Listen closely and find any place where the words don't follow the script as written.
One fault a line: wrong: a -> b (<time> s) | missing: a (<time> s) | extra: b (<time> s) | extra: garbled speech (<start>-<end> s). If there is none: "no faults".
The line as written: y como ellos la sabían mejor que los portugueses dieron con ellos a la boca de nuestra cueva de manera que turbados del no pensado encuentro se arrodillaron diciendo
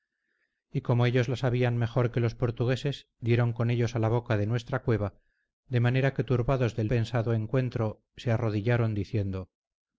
missing: no (6.9 s)